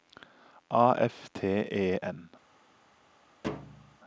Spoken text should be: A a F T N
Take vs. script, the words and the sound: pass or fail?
fail